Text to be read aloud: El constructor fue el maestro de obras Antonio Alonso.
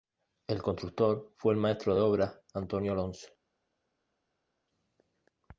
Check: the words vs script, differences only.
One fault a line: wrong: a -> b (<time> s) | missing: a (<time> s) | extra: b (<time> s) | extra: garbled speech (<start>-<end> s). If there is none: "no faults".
no faults